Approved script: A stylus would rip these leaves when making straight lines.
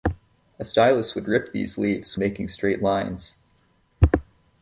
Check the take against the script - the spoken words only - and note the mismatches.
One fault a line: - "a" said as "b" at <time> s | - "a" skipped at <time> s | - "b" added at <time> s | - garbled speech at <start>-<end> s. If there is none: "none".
- "when" skipped at 2.2 s